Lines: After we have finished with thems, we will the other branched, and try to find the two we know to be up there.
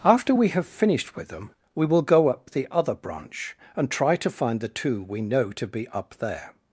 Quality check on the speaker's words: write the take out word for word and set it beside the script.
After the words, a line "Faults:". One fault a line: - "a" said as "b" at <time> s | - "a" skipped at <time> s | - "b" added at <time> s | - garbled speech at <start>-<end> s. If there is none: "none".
After we have finished with them, we will go up the other branch, and try to find the two we know to be up there.
Faults:
- "thems" said as "them" at 1.3 s
- "go up" added at 2.0 s
- "branched" said as "branch" at 2.9 s